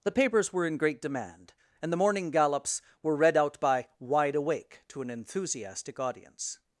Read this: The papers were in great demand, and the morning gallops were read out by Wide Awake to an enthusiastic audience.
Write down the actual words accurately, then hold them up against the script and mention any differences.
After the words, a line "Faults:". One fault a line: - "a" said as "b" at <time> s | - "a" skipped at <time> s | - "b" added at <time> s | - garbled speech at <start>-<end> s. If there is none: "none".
The papers were in great demand, and the morning gallops were read out by Wide Awake to an enthusiastic audience.
Faults:
none